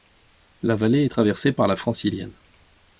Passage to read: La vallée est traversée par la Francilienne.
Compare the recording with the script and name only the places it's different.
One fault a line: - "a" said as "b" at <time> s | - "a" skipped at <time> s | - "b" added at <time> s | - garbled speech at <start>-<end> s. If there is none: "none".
none